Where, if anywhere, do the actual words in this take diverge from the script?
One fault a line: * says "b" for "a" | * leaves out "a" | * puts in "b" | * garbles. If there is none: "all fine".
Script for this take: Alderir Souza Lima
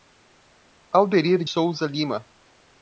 all fine